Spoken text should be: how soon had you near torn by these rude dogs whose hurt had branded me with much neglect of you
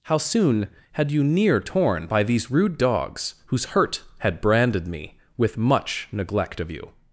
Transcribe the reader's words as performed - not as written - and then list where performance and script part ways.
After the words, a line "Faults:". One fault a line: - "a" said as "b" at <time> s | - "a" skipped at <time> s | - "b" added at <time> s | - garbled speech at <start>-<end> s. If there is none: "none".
how soon had you near torn by these rude dogs whose hurt had branded me with much neglect of you
Faults:
none